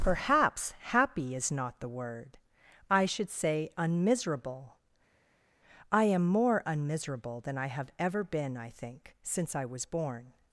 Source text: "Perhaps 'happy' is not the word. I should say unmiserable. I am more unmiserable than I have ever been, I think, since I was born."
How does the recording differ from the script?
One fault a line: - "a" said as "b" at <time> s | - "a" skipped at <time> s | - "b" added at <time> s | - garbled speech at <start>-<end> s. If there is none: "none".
none